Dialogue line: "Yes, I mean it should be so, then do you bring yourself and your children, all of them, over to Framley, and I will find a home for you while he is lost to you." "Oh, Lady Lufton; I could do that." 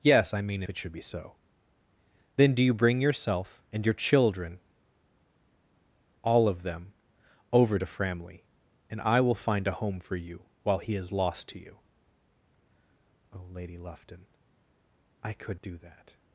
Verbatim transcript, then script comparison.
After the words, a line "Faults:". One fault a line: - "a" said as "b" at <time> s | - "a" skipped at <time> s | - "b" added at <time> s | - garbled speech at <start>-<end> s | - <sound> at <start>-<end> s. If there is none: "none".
"Yes, I mean it should be so, then do you bring yourself and your children, all of them, over to Framley, and I will find a home for you while he is lost to you." "Oh, Lady Lufton; I could do that."
Faults:
none